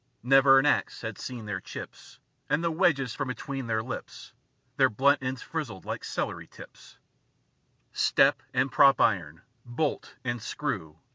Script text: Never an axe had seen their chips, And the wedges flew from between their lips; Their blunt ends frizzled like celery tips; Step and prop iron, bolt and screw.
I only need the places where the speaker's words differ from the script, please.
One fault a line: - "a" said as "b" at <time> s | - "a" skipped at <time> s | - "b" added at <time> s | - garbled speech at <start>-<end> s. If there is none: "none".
- "flew" skipped at 3.1 s